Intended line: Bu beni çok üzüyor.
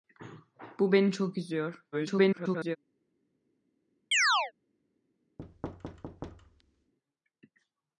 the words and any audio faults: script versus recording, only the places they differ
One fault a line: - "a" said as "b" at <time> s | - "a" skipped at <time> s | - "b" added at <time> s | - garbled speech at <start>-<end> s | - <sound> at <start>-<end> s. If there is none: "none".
- garbled speech at 1.9-2.8 s
- chirp at 4.1-4.5 s
- thud at 5.4-6.9 s